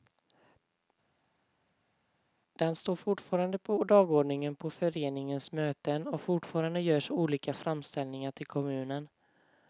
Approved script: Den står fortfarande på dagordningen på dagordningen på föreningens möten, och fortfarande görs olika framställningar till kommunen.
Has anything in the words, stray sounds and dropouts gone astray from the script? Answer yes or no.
yes